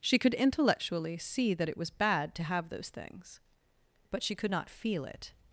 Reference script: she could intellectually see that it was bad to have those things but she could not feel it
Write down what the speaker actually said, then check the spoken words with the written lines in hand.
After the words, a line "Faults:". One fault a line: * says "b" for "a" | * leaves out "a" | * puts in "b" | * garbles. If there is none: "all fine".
she could intellectually see that it was bad to have those things but she could not feel it
Faults:
all fine